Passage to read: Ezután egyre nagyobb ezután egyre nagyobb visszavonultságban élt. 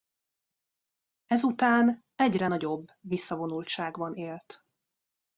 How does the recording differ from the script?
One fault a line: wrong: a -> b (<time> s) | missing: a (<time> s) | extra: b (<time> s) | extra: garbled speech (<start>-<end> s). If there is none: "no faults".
missing: ezután egyre nagyobb (2.9 s)